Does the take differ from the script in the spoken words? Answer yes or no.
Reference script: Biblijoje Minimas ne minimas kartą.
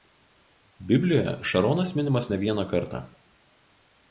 yes